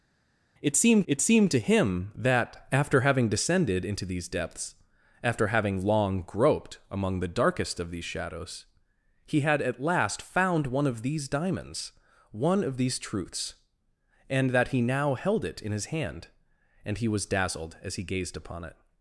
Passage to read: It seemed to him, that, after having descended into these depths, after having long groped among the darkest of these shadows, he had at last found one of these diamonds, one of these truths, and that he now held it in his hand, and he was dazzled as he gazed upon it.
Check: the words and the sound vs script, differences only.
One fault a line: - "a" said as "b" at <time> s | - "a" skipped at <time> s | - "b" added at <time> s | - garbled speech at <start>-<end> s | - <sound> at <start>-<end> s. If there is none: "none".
- "it seemed" added at 1.1 s